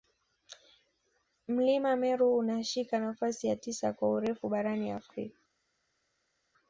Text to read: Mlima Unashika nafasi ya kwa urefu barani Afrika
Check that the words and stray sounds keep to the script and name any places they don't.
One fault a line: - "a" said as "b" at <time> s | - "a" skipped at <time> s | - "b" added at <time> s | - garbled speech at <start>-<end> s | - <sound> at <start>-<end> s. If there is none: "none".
- "Meru" added at 1.9 s
- "tisa" added at 3.5 s